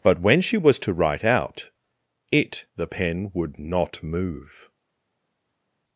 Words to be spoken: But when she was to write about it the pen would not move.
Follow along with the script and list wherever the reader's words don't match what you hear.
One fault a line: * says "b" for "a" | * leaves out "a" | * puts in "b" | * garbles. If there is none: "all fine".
* says "out" for "about"